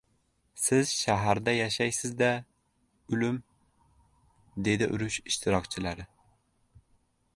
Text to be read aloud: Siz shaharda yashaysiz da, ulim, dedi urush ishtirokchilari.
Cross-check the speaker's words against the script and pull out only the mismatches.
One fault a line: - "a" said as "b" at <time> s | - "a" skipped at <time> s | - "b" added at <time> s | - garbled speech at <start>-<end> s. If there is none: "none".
none